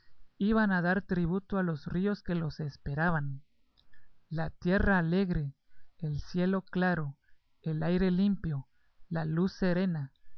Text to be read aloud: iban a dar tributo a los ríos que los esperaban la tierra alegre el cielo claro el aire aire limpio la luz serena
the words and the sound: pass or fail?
fail